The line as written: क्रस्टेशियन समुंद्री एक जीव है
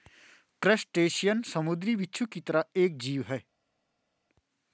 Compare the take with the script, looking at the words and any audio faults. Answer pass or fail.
fail